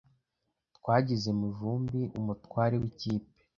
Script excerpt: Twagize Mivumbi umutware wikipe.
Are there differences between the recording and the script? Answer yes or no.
no